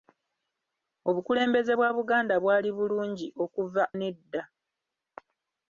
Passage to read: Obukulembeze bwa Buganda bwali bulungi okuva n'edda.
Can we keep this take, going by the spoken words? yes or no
yes